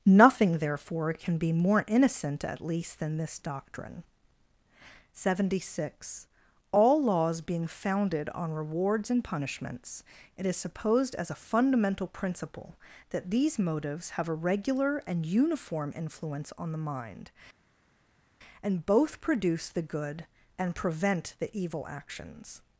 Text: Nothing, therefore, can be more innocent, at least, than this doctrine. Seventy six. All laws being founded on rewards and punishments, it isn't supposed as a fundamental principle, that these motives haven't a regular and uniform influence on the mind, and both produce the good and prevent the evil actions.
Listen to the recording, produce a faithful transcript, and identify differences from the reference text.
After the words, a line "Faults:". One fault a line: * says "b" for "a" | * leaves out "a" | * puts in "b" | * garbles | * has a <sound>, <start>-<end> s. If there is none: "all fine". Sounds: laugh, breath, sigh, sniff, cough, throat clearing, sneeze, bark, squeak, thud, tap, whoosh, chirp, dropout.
Nothing, therefore, can be more innocent, at least, than this doctrine. Seventy six. All laws being founded on rewards and punishments, it is supposed as a fundamental principle, that these motives have a regular and uniform influence on the mind, and both produce the good and prevent the evil actions.
Faults:
* says "is" for "isn't"
* says "have" for "haven't"